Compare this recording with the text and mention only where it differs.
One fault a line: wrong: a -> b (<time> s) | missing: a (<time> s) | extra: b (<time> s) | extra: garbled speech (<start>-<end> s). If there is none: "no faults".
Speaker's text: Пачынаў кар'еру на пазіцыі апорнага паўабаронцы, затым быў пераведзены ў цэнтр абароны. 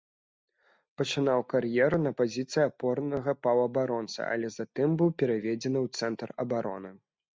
extra: але (4.3 s)